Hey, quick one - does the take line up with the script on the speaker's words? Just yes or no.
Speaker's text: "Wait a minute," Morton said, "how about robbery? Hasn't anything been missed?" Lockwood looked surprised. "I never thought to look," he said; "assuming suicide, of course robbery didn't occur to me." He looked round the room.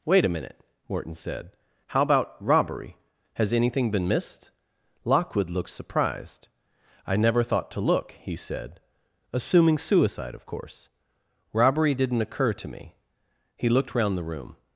no